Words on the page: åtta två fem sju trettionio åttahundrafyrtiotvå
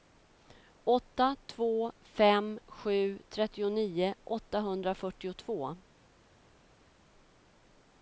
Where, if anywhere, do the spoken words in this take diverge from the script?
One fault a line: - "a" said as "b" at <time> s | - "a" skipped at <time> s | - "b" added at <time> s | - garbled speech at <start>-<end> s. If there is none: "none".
none